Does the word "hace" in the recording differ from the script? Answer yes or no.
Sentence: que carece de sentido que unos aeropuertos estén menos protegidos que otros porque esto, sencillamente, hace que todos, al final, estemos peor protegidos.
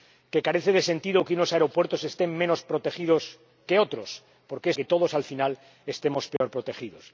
yes